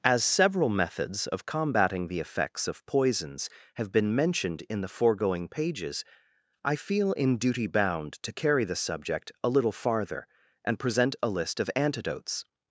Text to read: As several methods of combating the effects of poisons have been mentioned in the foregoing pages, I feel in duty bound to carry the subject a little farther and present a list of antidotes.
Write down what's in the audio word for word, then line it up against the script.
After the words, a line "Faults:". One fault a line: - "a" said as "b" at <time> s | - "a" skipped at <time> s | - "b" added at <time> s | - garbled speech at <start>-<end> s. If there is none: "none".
As several methods of combating the effects of poisons have been mentioned in the foregoing pages, I feel in duty bound to carry the subject a little farther and present a list of antidotes.
Faults:
none